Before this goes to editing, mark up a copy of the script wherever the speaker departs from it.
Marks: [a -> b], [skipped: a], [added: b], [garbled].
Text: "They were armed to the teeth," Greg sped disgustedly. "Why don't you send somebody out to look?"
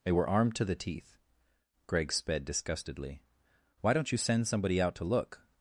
"They were armed to the teeth," Greg sped disgustedly. "Why don't you send somebody out to look?"